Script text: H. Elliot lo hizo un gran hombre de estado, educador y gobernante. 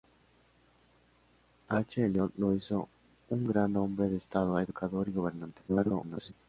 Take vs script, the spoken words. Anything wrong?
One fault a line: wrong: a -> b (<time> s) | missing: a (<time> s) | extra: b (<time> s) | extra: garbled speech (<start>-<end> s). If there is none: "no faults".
extra: garbled speech (5.7-6.3 s)